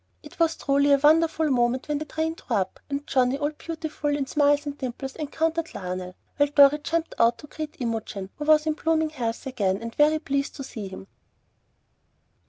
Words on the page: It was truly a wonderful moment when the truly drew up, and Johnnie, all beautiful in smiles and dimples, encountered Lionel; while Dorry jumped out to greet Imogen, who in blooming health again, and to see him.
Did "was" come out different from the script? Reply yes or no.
no